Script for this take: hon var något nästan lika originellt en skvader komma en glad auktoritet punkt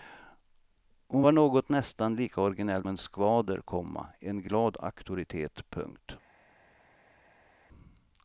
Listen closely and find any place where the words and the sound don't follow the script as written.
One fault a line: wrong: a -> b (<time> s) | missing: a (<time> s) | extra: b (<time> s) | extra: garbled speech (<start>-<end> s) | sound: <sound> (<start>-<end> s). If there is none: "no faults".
no faults